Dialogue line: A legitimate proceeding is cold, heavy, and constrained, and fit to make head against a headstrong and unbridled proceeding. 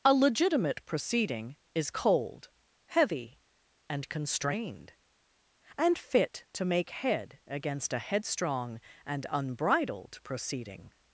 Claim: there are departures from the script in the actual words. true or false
false